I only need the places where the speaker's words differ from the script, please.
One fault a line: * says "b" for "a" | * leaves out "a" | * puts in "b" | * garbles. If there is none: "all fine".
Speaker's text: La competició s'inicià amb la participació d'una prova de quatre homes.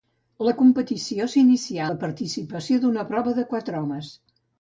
* leaves out "amb"